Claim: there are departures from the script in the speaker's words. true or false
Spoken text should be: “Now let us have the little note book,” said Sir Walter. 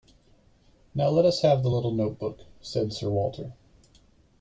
false